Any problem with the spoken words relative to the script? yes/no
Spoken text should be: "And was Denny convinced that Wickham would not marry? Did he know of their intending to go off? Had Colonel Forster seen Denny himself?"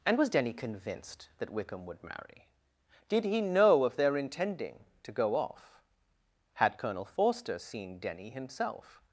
yes